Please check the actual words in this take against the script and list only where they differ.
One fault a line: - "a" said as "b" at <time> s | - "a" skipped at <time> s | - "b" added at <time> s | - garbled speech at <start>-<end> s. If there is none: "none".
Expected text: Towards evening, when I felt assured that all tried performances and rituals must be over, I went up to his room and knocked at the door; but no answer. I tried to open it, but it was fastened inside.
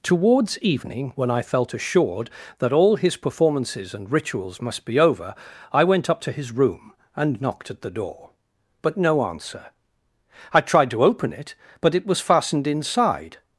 - "tried" said as "his" at 3.0 s